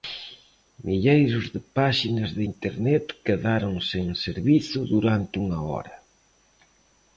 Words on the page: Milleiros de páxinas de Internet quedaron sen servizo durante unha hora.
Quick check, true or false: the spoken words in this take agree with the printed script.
true